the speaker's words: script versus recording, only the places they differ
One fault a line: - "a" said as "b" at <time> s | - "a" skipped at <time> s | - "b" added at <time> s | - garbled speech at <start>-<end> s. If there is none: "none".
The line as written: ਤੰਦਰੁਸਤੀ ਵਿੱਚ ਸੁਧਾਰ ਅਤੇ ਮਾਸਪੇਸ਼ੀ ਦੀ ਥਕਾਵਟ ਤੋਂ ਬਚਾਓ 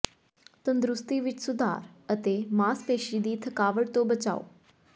none